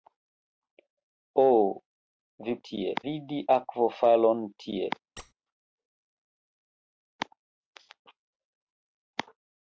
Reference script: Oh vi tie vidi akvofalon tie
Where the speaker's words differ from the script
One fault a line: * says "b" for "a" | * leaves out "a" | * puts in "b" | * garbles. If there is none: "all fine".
all fine